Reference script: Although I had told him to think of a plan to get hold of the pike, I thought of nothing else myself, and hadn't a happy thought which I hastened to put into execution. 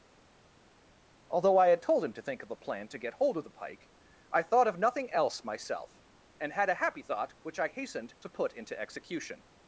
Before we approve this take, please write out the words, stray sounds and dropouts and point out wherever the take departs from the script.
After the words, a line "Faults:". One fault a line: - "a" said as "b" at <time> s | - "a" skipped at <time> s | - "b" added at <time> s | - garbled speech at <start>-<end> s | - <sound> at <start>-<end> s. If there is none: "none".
Although I had told him to think of a plan to get hold of the pike, I thought of nothing else myself, and had a happy thought which I hastened to put into execution.
Faults:
- "hadn't" said as "had" at 6.5 s